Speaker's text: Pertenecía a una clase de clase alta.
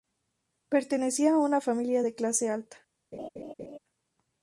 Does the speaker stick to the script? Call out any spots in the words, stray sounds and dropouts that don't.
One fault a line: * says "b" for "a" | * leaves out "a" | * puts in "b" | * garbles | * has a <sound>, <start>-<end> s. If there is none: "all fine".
* says "familia" for "clase"
* has a laugh, 3.1-3.8 s